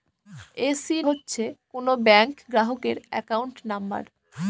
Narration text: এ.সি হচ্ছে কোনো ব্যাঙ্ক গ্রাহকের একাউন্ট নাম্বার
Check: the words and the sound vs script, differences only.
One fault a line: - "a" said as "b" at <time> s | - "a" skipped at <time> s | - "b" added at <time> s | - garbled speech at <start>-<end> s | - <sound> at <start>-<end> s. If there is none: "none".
none